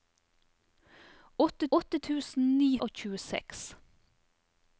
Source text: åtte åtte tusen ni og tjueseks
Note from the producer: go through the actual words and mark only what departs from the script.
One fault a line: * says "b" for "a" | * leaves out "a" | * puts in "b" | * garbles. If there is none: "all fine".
all fine